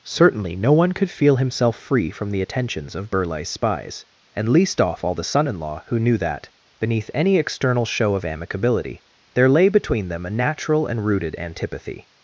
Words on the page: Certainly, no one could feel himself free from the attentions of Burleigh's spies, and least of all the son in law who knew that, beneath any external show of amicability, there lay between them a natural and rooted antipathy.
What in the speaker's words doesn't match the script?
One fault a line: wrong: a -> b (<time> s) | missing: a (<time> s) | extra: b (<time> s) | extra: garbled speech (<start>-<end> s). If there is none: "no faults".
wrong: of -> off (4.8 s)